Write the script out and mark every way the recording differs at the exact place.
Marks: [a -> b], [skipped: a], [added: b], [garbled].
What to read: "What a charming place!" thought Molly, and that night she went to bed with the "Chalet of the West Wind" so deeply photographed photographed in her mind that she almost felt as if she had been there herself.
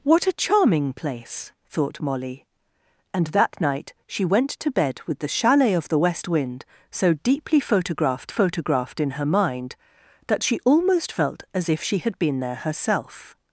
"What a charming place!" thought Molly, and that night she went to bed with the "Chalet of the West Wind" so deeply photographed photographed in her mind that she almost felt as if she had been there herself.